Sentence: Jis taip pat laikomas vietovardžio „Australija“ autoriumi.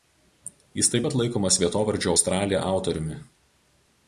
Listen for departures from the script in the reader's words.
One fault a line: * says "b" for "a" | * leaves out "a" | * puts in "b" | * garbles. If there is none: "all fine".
all fine